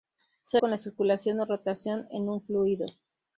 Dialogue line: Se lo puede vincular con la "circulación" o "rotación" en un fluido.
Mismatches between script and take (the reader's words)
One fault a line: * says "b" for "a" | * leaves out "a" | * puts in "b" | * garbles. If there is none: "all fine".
* leaves out "lo puede vincular"